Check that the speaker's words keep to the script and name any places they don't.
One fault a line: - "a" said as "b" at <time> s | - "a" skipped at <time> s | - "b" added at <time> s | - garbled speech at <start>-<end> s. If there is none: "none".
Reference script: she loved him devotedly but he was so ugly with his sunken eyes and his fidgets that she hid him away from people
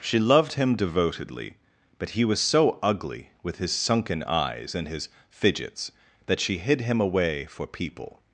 - "from" said as "for" at 7.5 s